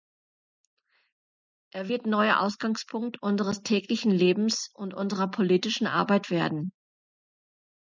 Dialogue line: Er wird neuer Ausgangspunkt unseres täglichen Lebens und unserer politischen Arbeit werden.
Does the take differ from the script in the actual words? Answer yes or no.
no